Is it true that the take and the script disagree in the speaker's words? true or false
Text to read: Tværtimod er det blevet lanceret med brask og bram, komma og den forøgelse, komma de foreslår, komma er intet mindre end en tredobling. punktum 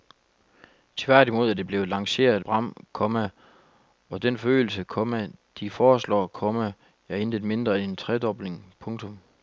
true